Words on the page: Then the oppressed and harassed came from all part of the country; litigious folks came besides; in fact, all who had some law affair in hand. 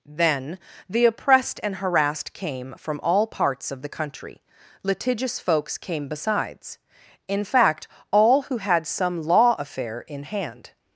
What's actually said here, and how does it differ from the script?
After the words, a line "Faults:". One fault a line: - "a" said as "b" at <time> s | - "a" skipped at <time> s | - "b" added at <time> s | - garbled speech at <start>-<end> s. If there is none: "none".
Then the oppressed and harassed came from all parts of the country; litigious folks came besides; in fact, all who had some law affair in hand.
Faults:
- "part" said as "parts" at 3.3 s